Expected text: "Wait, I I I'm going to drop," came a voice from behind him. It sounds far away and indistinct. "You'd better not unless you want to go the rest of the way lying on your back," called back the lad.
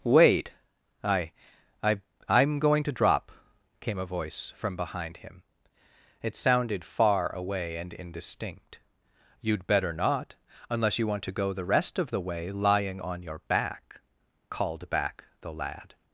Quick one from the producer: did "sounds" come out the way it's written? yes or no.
no